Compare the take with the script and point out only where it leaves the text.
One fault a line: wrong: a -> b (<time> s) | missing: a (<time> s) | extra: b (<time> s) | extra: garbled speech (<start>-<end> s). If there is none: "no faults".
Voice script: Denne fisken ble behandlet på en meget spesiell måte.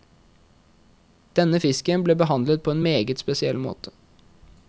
no faults